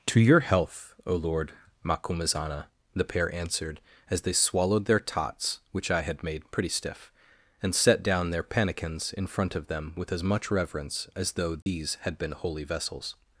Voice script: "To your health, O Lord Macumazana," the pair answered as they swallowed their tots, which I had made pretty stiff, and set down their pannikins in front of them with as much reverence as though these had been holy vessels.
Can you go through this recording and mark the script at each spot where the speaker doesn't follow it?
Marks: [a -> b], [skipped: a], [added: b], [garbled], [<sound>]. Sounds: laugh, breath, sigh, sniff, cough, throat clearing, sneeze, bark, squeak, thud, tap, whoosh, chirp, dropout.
"To your health, O Lord Macumazana," the pair answered as they swallowed their tots, which I had made pretty stiff, and set down their pannikins in front of them with as much reverence as though these [dropout] had been holy vessels.